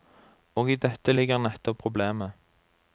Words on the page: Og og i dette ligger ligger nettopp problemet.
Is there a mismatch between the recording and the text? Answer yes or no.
yes